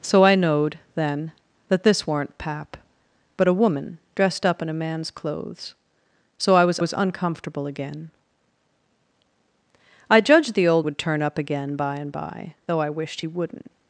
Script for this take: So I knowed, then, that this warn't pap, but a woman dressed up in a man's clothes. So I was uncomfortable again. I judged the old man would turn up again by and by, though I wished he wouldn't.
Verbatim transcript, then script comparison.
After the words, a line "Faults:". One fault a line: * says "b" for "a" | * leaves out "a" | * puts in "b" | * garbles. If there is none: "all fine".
So I knowed, then, that this warn't pap, but a woman dressed up in a man's clothes. So I was was uncomfortable again. I judged the old would turn up again by and by, though I wished he wouldn't.
Faults:
* puts in "was"
* leaves out "man"